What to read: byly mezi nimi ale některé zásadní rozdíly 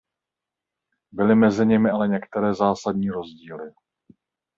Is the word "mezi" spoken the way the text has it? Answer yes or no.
yes